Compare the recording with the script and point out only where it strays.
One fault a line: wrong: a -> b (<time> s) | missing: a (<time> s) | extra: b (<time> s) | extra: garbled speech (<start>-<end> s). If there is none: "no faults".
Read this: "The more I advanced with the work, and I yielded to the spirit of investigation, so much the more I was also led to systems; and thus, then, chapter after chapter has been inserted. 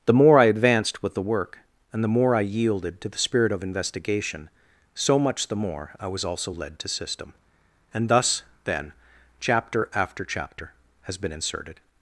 extra: the more (2.0 s)
wrong: systems -> system (6.9 s)